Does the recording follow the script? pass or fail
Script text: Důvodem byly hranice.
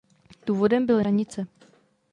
pass